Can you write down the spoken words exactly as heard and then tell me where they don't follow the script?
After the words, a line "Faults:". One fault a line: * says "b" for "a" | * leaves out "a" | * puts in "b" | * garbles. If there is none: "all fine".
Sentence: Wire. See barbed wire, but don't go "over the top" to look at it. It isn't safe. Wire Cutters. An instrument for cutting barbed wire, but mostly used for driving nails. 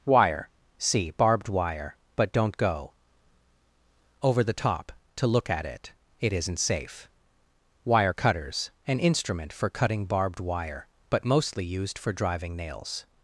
Wire. See barbed wire, but don't go "over the top" to look at it. It isn't safe. Wire Cutters. An instrument for cutting barbed wire, but mostly used for driving nails.
Faults:
all fine